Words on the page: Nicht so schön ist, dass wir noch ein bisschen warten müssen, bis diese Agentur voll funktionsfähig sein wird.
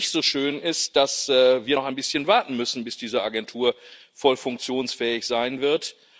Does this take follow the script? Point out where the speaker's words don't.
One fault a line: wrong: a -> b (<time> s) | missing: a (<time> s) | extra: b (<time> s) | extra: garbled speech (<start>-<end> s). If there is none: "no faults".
no faults